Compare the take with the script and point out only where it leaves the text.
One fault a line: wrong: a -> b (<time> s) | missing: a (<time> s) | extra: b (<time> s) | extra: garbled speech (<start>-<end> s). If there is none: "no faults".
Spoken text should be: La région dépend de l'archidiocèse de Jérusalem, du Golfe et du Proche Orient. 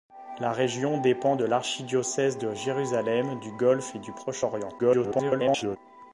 extra: garbled speech (4.8-5.8 s)